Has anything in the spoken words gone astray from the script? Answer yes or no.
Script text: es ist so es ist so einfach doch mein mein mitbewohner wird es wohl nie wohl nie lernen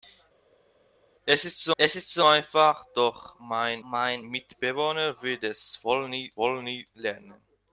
no